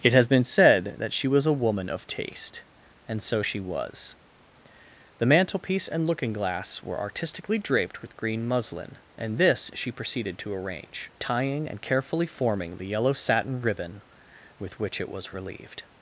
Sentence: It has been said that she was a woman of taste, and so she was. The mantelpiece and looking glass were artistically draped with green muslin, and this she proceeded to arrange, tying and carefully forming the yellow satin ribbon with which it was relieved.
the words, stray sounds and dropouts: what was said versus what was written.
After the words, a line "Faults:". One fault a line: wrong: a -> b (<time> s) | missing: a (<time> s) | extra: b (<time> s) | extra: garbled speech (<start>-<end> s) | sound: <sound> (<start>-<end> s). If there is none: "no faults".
It has been said that she was a woman of taste, and so she was. The mantelpiece and looking glass were artistically draped with green muslin, and this she proceeded to arrange, tying and carefully forming the yellow satin ribbon with which it was relieved.
Faults:
no faults